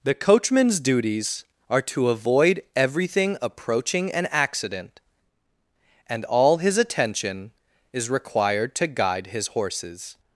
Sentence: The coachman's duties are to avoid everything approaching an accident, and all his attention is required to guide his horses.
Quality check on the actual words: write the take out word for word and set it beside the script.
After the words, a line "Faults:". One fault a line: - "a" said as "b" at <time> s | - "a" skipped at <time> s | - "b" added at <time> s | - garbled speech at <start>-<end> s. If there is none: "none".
The coachman's duties are to avoid everything approaching an accident, and all his attention is required to guide his horses.
Faults:
none